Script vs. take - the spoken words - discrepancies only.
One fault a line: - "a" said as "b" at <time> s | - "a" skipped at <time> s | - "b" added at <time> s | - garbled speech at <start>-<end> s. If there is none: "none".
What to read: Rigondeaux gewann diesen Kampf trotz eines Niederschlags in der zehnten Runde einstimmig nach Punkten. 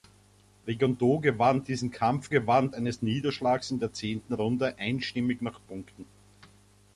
- "trotz" said as "gewann" at 2.3 s